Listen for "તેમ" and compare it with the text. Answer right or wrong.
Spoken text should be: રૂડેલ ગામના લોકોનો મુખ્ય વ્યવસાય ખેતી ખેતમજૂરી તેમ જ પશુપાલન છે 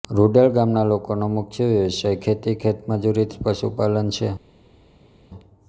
wrong